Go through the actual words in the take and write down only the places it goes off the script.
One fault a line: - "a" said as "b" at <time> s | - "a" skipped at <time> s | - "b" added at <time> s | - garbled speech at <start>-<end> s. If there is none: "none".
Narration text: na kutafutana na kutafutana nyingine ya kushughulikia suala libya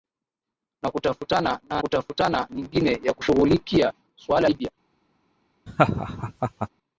none